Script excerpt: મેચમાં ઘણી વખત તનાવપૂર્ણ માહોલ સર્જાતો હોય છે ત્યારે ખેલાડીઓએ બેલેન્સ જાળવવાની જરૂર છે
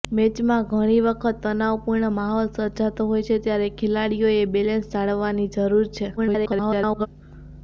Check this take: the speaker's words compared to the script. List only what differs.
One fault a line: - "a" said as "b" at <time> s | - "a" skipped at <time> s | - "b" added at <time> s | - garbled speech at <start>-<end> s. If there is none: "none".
- garbled speech at 6.2-7.1 s